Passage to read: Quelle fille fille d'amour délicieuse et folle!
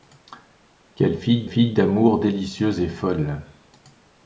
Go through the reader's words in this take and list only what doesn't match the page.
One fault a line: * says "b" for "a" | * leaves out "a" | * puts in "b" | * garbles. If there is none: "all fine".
all fine